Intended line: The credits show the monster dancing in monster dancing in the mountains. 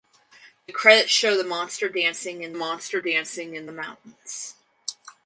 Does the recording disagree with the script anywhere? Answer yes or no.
no